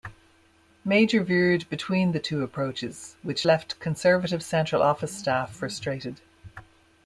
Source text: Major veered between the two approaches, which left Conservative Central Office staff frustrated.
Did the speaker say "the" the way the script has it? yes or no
yes